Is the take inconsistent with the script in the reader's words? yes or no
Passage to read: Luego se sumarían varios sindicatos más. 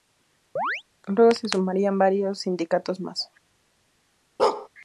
no